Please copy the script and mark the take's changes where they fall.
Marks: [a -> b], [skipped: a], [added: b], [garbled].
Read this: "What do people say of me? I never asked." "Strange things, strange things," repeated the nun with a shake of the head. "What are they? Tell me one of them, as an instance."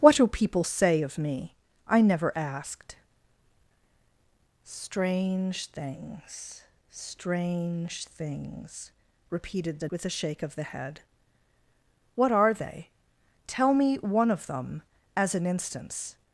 "What do people say of me? I never asked." "Strange things, strange things," repeated the [skipped: nun] with a shake of the head. "What are they? Tell me one of them, as an instance."